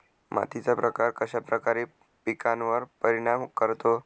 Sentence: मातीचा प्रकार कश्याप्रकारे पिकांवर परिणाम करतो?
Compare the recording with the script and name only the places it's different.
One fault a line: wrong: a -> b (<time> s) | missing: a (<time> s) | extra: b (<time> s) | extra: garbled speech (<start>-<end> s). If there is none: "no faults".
no faults